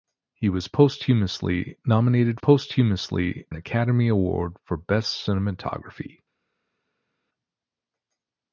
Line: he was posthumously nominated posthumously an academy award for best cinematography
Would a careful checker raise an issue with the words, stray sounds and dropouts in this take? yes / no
no